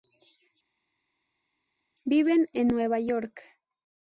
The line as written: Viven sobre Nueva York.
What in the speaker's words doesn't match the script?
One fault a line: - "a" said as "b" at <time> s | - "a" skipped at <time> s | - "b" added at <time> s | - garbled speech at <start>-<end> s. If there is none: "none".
- "sobre" said as "en" at 2.5 s